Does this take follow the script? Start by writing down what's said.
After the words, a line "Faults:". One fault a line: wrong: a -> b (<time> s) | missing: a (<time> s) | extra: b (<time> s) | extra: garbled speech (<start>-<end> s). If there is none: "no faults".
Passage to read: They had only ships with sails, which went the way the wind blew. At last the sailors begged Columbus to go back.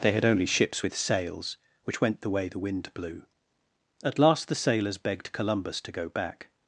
They had only ships with sails, which went the way the wind blew. At last the sailors begged Columbus to go back.
Faults:
no faults